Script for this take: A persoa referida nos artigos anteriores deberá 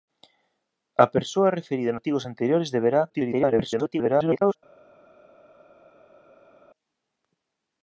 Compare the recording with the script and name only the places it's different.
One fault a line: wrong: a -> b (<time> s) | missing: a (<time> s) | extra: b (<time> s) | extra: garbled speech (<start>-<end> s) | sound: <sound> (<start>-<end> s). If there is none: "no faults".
missing: nos (1.9 s)
extra: garbled speech (3.1-4.6 s)